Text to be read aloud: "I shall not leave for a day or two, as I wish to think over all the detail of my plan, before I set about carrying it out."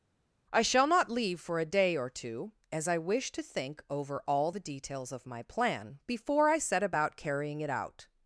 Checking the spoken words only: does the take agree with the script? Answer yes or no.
no